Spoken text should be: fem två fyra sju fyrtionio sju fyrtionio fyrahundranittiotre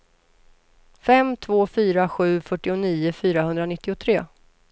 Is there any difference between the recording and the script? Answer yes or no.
yes